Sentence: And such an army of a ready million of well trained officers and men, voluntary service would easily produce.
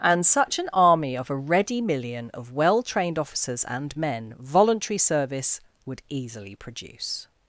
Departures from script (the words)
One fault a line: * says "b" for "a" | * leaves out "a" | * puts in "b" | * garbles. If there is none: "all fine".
all fine